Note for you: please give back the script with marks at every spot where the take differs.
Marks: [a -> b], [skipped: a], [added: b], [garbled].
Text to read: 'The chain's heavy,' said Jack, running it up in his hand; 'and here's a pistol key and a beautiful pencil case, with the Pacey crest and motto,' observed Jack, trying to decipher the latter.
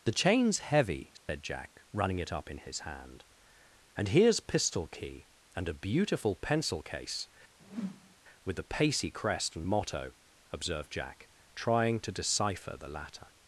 'The chain's heavy,' said Jack, running it up in his hand; 'and here's [skipped: a] pistol key and a beautiful pencil case, with the Pacey crest and motto,' observed Jack, trying to decipher the latter.